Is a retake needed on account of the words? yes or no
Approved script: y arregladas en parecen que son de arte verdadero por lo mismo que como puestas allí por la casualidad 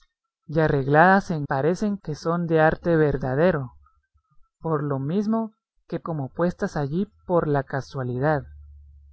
no